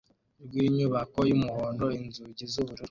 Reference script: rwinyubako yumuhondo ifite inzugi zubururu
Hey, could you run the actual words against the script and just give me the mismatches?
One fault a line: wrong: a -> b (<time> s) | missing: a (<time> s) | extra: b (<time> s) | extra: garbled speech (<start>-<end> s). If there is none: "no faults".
missing: ifite (1.8 s)